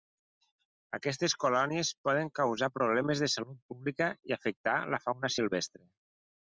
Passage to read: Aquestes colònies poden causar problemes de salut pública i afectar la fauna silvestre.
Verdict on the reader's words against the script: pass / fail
pass